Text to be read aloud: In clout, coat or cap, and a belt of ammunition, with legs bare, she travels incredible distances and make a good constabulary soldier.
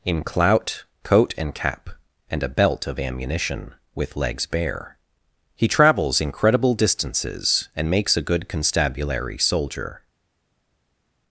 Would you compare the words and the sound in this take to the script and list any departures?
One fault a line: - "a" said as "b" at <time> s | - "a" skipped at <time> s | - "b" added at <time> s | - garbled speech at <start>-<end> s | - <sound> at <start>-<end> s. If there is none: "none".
- "or" said as "and" at 1.4 s
- "she" said as "he" at 5.5 s
- "make" said as "makes" at 7.9 s